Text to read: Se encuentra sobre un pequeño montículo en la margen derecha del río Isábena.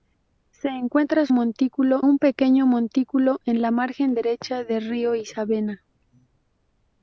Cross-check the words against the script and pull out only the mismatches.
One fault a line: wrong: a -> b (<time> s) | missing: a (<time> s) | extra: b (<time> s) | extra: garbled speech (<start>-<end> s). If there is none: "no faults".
wrong: sobre -> montículo (1.3 s)